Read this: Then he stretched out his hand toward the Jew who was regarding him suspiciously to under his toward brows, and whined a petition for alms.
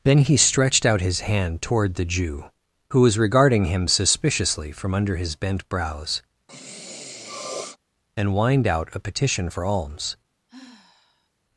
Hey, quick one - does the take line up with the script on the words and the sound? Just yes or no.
no